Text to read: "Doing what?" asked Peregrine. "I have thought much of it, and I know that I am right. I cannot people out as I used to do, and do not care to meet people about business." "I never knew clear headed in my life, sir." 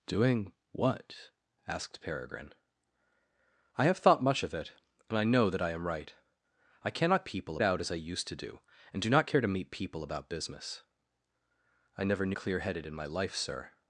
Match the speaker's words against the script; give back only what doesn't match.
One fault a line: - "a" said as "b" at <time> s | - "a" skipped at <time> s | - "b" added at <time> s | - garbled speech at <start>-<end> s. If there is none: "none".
none